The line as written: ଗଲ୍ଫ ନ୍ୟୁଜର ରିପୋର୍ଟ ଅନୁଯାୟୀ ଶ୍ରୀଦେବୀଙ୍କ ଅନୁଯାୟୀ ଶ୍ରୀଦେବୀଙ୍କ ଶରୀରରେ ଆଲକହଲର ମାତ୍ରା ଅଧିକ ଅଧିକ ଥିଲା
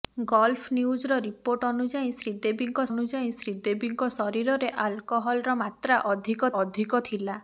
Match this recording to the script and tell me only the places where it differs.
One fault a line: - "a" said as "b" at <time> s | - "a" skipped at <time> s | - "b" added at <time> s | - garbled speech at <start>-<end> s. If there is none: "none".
none